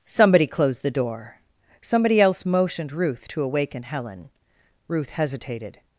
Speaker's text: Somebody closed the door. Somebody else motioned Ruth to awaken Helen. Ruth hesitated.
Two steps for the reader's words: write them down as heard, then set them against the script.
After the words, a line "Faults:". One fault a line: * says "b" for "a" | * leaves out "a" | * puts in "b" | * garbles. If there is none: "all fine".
Somebody closed the door. Somebody else motioned Ruth to awaken Helen. Ruth hesitated.
Faults:
all fine